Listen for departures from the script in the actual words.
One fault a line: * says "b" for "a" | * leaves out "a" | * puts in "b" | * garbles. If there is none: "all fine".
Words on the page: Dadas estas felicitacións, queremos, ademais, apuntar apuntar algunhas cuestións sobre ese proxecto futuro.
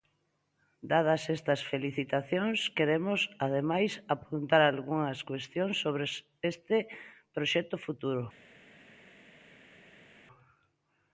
* leaves out "apuntar"
* says "este" for "ese"